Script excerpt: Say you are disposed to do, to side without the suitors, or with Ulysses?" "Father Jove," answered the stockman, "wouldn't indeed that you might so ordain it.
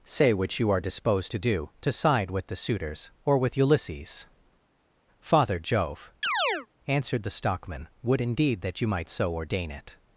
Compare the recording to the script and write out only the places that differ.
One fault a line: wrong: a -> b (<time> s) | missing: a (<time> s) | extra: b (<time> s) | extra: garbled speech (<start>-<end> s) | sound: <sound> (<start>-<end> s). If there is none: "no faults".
extra: which (0.3 s)
wrong: without -> with (2.3 s)
sound: chirp (6.2-6.7 s)
wrong: wouldn't -> would (8.0 s)